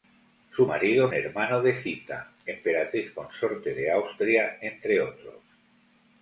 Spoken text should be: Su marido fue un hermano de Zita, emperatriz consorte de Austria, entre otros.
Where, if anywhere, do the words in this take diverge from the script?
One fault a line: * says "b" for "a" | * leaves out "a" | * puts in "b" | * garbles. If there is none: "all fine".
* leaves out "fue un"